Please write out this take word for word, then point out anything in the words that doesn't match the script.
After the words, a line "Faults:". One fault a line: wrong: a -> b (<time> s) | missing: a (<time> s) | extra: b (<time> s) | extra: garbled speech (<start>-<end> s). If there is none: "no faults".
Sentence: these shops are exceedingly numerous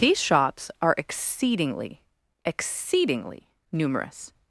these shops are exceedingly exceedingly numerous
Faults:
extra: exceedingly (2.4 s)